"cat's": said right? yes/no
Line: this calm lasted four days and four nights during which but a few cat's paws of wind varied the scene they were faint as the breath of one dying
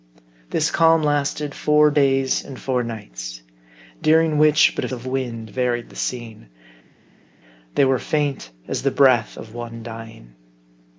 no